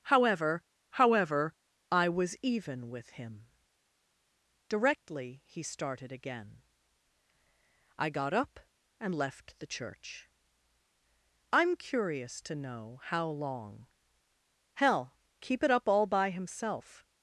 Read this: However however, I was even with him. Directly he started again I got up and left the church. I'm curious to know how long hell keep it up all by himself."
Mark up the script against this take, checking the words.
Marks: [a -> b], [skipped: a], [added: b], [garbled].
However however, I was even with him. Directly he started again I got up and left the church. I'm curious to know how long hell keep it up all by himself."